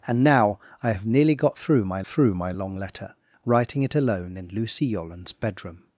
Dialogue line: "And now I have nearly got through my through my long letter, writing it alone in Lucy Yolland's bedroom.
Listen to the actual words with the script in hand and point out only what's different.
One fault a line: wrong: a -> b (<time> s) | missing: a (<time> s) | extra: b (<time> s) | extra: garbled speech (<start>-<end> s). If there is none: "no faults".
no faults